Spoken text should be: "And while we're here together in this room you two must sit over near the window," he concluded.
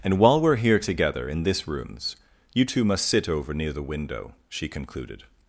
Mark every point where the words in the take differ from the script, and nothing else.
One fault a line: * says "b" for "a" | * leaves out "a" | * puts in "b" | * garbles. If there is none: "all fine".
* says "rooms" for "room"
* says "she" for "he"